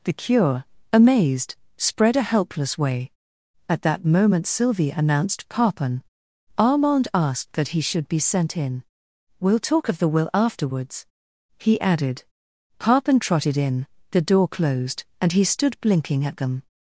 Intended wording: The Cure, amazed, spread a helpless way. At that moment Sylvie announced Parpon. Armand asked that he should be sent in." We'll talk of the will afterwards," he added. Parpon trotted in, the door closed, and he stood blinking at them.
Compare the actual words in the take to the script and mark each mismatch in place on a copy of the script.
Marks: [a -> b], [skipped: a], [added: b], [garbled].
The Cure, amazed, spread a helpless way. At that moment Sylvie announced Parpon. Armand asked that he should be sent in." We'll talk of the will afterwards," he added. Parpon trotted in, the door closed, and he stood blinking at them.